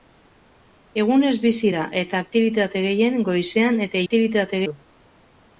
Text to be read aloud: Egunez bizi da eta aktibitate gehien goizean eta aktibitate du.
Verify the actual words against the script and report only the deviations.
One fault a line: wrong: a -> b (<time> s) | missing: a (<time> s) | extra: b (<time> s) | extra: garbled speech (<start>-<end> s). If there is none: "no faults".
no faults